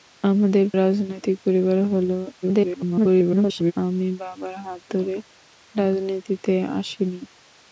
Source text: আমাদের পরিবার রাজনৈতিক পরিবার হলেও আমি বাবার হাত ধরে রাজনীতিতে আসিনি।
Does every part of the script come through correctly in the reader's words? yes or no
no